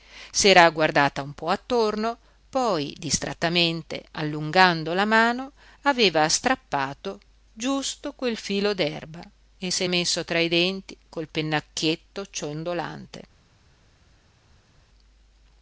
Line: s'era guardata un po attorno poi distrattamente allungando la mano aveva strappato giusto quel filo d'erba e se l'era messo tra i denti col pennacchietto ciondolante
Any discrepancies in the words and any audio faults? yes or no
yes